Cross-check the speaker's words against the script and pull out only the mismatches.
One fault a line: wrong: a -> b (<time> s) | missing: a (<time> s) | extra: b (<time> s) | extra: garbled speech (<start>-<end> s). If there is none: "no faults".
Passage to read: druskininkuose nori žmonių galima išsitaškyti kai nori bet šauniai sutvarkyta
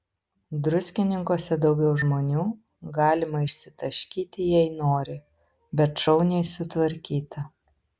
wrong: nori -> daugiau (1.6 s)
wrong: kai -> jei (4.5 s)